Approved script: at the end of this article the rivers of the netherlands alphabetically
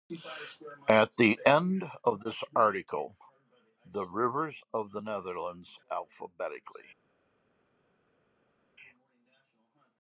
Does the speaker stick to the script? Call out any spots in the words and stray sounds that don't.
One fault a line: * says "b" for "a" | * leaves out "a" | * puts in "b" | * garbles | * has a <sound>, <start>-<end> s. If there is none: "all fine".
all fine